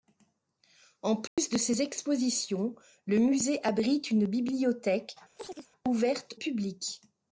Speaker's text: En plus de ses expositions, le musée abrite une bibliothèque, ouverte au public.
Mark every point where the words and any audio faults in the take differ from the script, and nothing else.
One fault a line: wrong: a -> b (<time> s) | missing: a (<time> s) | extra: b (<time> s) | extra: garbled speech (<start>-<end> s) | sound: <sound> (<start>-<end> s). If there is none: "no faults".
sound: dropout (1.3-1.4 s)
sound: chirp (5.4-5.7 s)
missing: au (6.4 s)